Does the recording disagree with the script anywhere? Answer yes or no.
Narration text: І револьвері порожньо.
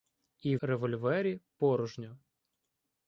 no